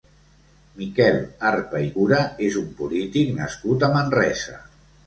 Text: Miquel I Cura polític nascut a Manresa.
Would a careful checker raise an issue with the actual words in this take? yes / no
yes